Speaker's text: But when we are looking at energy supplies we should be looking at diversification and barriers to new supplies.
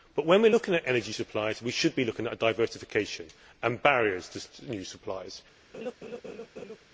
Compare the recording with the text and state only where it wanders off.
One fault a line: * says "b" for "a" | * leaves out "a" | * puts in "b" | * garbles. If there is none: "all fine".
all fine